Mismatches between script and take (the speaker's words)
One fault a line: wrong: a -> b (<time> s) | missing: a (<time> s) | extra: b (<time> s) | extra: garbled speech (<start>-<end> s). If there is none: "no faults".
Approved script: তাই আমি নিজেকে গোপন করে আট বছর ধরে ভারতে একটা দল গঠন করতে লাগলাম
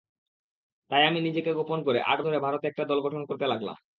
missing: বছর (2.2 s)